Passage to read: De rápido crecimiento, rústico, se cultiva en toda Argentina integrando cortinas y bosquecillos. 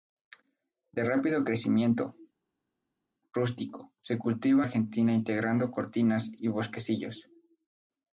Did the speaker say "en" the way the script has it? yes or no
no